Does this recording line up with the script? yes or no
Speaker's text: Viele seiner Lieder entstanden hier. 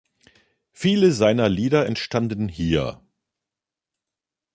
yes